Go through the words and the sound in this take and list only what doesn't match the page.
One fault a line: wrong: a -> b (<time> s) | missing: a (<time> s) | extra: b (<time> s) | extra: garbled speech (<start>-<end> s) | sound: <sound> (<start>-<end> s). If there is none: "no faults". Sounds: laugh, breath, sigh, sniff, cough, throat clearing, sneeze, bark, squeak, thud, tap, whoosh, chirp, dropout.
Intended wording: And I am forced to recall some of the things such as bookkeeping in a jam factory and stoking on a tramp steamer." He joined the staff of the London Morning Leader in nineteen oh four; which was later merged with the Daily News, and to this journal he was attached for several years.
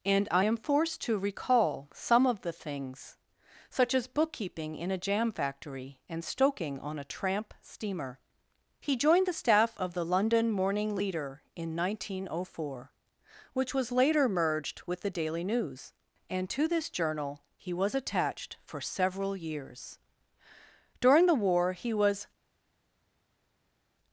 extra: During the War he was (21.0 s)